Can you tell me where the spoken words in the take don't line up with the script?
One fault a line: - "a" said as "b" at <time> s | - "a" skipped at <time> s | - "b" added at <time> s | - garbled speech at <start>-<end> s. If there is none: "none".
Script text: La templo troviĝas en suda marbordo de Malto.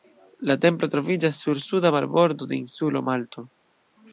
- "en" said as "sur" at 1.4 s
- "insulo" added at 2.6 s